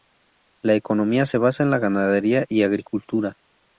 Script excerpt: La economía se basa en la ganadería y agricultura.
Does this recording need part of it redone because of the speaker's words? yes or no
no